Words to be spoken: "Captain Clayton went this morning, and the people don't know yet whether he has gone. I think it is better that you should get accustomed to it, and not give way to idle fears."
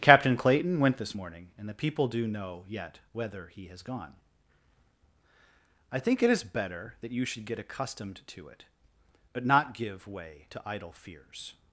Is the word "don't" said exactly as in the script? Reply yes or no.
no